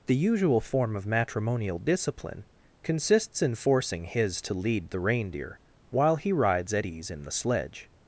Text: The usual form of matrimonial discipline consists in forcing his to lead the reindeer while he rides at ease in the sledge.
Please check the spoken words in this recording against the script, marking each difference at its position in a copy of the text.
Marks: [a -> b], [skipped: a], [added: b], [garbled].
The usual form of matrimonial discipline consists in forcing his to lead the reindeer while he rides at ease in the sledge.